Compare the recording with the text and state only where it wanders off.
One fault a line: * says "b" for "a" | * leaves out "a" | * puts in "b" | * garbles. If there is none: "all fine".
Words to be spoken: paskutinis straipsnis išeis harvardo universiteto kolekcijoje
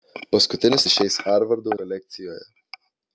* leaves out "straipsnis"
* leaves out "universiteto"